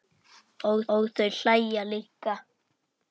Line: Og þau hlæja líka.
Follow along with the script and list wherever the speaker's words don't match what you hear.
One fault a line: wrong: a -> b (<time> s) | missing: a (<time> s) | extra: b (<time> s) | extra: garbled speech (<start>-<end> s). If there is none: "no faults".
extra: og (0.9 s)